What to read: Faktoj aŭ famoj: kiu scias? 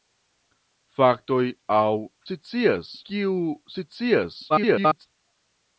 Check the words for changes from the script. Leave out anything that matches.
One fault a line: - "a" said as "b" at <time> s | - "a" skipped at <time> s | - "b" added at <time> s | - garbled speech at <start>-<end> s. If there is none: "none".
- "famoj" said as "scias" at 2.3 s
- garbled speech at 4.5-5.1 s